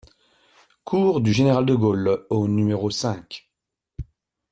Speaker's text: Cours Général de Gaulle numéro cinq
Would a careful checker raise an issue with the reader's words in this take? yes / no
yes